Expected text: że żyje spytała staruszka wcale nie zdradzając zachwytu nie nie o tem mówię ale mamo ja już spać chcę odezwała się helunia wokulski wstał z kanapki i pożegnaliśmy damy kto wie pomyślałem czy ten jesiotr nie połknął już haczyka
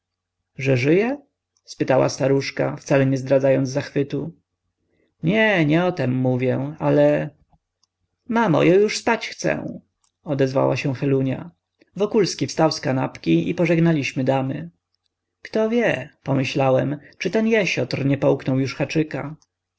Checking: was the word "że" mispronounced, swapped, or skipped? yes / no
no